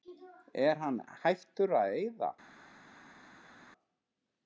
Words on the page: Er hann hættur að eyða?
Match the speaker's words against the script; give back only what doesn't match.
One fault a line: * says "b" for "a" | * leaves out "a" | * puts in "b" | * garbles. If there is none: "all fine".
all fine